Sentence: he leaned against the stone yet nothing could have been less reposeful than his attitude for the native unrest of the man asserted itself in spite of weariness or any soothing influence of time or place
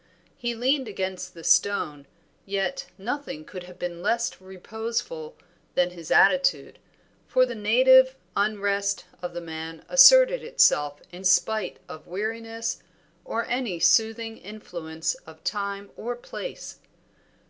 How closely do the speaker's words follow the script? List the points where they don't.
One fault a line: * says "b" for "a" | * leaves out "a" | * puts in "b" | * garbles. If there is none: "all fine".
all fine